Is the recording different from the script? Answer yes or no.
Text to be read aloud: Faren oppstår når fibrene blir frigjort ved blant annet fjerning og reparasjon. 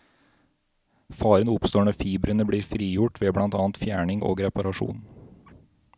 no